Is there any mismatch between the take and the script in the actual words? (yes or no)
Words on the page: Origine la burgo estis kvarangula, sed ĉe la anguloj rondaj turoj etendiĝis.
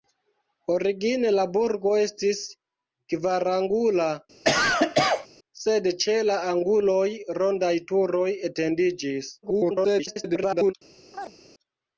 yes